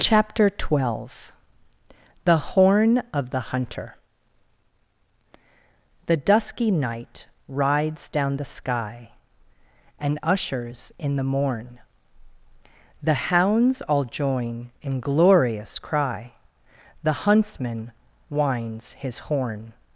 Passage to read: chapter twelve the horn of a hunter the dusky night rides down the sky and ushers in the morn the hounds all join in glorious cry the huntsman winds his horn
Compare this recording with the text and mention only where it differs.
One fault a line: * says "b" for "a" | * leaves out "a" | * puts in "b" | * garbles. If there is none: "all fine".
* says "the" for "a"